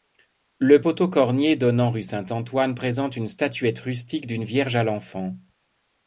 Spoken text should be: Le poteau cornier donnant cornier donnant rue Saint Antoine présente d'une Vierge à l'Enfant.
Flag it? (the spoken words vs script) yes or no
yes